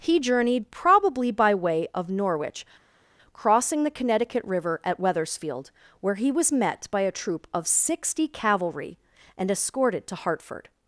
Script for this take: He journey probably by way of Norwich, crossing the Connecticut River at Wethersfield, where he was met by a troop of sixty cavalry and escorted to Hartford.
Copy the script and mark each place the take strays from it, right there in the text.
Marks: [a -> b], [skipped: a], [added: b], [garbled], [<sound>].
He [journey -> journeyed] probably by way of Norwich, crossing the Connecticut River at Wethersfield, where he was met by a troop of sixty cavalry and escorted to Hartford.